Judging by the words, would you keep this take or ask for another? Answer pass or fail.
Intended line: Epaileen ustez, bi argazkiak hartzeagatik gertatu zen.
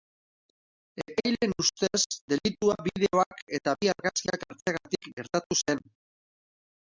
fail